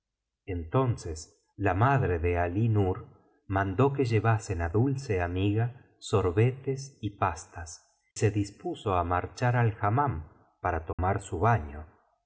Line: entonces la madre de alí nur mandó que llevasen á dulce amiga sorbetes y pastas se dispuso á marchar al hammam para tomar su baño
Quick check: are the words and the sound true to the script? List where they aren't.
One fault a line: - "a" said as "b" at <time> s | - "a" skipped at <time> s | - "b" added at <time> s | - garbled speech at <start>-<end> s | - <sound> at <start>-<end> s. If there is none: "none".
- dropout at 10.9-11.0 s